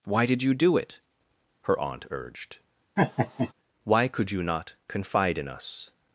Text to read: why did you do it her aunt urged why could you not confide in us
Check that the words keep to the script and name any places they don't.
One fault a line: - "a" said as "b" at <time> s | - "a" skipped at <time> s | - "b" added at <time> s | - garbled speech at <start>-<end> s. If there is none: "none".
none